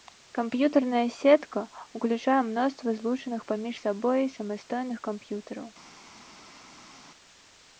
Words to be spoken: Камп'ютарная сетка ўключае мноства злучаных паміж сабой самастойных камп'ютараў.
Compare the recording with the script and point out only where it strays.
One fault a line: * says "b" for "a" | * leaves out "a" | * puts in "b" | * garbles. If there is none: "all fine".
all fine